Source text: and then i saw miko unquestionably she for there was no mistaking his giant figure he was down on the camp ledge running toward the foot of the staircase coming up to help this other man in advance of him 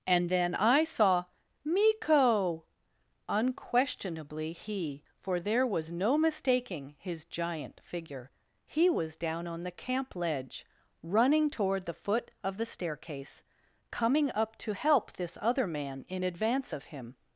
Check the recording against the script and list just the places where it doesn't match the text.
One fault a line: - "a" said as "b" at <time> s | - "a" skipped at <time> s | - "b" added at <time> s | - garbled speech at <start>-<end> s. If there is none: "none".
- "she" said as "he" at 4.5 s